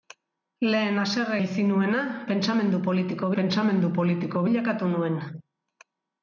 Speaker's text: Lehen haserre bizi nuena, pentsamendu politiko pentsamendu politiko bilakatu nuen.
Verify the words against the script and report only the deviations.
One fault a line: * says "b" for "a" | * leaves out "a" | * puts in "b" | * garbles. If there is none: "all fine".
all fine